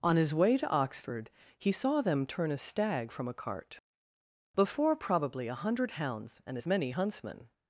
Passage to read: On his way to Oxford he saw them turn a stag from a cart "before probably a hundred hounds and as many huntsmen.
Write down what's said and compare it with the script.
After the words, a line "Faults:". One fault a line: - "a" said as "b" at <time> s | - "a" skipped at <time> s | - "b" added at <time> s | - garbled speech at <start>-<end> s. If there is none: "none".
On his way to Oxford he saw them turn a stag from a cart "before probably a hundred hounds and as many huntsmen.
Faults:
none